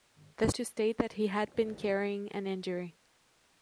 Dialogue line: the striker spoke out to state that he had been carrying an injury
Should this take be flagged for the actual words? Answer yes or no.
yes